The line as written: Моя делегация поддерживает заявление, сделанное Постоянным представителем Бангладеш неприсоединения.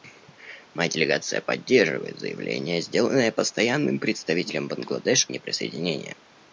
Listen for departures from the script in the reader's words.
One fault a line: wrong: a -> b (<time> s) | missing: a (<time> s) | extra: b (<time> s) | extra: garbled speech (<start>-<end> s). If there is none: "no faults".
no faults